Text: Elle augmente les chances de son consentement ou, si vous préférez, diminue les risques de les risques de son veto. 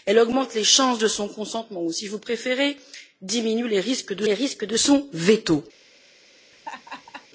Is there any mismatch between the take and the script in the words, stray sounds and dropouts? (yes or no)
yes